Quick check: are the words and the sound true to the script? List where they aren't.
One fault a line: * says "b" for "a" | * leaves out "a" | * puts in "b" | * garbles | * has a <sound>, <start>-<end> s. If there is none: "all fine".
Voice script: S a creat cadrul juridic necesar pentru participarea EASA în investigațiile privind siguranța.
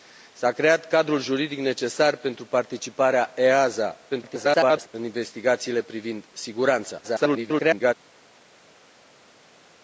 * garbles
* garbles